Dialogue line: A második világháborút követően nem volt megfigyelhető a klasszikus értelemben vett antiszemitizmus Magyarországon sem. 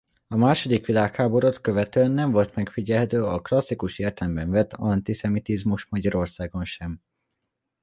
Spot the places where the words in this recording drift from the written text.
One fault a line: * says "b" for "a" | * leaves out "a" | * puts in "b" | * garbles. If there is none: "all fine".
all fine